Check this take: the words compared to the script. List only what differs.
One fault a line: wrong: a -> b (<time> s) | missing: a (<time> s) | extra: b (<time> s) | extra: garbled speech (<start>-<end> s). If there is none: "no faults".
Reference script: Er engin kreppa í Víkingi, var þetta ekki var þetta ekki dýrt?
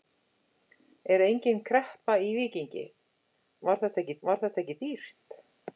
no faults